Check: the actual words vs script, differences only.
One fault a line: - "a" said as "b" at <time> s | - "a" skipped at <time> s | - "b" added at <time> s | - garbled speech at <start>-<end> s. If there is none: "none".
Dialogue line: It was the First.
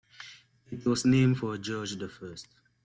- "named for George" added at 1.1 s